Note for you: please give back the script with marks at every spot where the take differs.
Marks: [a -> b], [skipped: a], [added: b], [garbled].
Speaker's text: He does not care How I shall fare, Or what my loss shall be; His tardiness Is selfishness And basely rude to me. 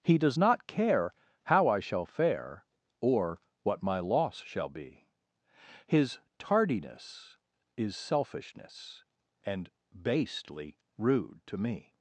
He does not care How I shall fare, Or what my loss shall be; His tardiness Is selfishness And basely rude to me.